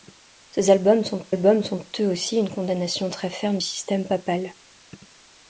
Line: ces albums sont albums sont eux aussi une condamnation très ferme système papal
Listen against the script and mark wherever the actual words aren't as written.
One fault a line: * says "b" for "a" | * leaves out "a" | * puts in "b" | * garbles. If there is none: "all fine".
all fine